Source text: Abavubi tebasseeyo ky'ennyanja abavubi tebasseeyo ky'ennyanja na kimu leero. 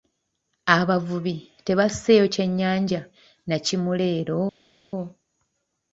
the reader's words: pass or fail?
fail